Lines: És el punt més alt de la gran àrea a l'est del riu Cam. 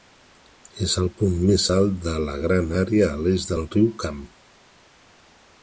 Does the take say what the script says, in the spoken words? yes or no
yes